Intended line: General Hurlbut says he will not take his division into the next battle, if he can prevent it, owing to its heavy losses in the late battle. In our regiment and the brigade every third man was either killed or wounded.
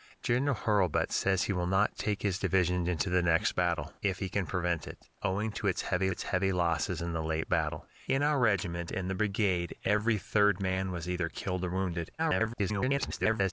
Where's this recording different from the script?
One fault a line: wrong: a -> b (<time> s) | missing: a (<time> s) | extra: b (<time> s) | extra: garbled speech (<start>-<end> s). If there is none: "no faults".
extra: its heavy (6.1 s)
extra: garbled speech (12.2-13.5 s)